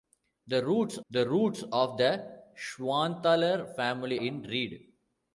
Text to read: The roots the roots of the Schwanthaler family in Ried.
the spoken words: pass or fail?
pass